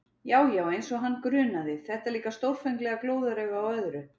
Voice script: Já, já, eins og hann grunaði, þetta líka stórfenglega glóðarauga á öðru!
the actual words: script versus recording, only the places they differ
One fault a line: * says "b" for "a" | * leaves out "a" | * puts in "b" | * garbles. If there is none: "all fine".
all fine